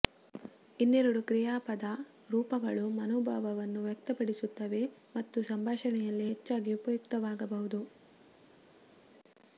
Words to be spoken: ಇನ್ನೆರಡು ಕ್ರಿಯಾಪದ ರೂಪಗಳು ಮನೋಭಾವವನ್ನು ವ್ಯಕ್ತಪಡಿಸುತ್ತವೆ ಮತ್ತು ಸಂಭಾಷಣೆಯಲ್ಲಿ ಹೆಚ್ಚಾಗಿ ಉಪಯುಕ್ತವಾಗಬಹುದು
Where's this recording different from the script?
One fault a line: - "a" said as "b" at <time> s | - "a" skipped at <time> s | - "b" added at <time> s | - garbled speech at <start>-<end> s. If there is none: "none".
none